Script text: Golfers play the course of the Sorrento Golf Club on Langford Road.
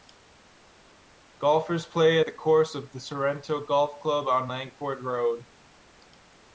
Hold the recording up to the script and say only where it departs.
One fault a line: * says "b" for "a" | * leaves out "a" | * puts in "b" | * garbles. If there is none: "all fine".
all fine